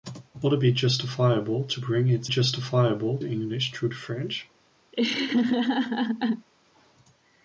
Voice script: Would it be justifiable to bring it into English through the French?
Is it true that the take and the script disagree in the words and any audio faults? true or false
true